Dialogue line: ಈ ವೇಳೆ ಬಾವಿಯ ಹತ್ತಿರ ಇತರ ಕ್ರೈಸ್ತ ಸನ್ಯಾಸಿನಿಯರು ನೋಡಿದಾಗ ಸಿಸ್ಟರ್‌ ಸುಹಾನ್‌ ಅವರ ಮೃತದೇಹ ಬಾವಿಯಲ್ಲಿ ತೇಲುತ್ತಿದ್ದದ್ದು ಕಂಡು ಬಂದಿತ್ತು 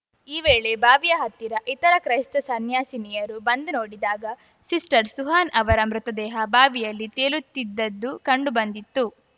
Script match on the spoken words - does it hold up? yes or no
no